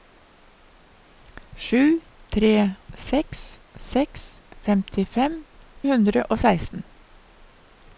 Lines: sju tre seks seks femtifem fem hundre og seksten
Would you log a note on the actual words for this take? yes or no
yes